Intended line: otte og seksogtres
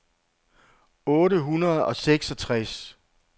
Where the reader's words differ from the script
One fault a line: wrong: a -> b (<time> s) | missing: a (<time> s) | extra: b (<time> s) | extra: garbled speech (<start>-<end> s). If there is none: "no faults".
extra: hundrede (1.4 s)